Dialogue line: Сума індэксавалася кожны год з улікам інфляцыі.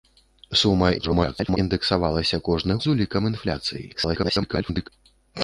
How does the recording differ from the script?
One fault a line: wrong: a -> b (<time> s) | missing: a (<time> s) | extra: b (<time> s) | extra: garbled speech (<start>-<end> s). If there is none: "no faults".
extra: garbled speech (1.0-1.6 s)
missing: год (2.8 s)
extra: garbled speech (3.9-4.9 s)